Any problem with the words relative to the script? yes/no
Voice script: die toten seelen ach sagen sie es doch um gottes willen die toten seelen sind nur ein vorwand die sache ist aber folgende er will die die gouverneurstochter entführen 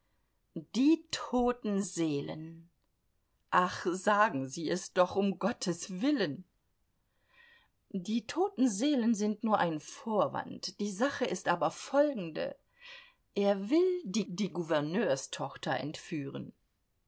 no